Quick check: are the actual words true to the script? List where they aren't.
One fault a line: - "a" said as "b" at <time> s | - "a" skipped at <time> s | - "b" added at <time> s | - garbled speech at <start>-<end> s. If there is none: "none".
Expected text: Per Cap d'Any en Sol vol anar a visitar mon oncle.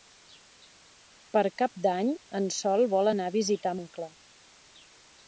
- "mon" skipped at 3.8 s